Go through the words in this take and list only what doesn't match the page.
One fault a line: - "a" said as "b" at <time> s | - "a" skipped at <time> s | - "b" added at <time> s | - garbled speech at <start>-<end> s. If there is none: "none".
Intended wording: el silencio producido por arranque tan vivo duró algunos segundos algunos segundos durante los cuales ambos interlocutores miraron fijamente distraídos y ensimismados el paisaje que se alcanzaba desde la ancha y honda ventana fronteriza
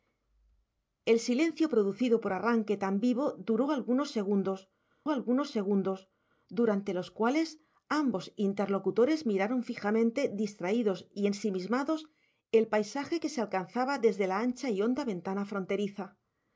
none